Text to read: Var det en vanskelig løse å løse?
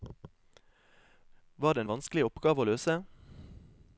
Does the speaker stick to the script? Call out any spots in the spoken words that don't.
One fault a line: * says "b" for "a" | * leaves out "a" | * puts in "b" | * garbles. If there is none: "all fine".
* says "oppgave" for "løse"